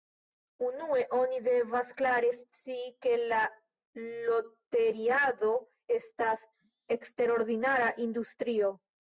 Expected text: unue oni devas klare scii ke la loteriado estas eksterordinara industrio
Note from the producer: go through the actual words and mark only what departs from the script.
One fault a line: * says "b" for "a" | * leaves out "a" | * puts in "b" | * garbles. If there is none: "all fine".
all fine